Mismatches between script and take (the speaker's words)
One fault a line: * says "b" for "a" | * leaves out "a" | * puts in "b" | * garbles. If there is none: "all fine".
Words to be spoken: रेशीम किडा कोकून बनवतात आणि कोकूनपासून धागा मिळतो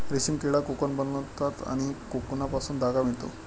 all fine